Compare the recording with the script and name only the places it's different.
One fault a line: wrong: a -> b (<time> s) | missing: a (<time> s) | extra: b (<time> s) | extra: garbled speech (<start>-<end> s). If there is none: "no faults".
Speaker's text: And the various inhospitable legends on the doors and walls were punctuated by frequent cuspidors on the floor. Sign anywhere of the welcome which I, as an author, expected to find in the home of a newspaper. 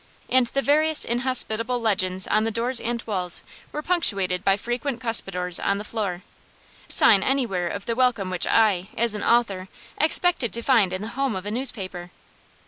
no faults